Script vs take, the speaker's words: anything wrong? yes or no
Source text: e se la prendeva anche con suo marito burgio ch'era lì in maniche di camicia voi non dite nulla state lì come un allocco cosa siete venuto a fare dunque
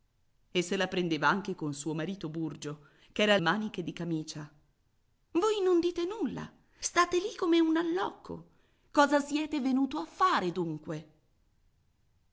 yes